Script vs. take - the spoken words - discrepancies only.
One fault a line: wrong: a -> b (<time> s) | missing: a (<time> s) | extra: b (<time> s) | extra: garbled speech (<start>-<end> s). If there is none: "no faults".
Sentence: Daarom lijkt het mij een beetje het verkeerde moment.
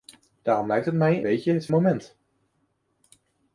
missing: een (1.2 s)
missing: verkeerde (1.7 s)